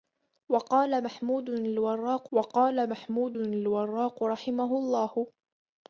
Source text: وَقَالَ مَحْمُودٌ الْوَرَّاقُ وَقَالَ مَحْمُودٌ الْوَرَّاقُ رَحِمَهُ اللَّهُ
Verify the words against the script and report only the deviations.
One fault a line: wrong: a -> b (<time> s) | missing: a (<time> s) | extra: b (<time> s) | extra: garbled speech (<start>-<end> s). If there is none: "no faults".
no faults